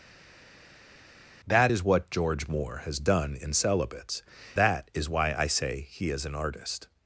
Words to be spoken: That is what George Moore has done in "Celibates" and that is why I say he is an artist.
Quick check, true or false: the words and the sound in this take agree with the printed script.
false